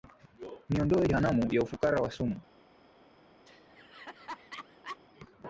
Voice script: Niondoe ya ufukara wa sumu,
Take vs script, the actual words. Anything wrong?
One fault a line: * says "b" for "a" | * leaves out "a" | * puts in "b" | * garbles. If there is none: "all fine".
* puts in "jehanamu"